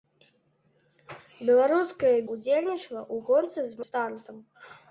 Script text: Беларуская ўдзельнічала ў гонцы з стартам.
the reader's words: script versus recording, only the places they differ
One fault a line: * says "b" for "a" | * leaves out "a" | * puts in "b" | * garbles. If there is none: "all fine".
all fine